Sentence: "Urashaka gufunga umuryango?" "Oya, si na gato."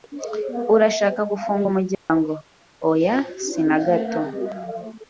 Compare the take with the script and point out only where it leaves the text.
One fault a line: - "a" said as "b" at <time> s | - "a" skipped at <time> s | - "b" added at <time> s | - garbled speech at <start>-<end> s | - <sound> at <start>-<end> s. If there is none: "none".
- dropout at 1.9-2.1 s